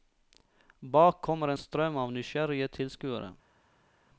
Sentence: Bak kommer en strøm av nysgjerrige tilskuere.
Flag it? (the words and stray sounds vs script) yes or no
no